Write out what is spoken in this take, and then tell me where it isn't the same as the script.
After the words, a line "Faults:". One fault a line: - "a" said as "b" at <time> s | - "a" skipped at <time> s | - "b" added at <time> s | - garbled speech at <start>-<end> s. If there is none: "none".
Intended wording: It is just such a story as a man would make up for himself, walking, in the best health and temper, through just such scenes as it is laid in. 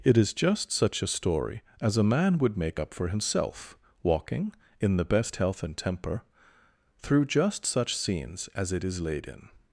It is just such a story as a man would make up for himself, walking, in the best health and temper, through just such scenes as it is laid in.
Faults:
none